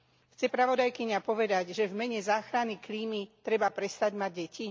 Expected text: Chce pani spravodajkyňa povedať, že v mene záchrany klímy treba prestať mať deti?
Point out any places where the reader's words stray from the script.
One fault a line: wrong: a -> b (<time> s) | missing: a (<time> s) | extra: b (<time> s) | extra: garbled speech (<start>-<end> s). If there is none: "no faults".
missing: pani (0.5 s)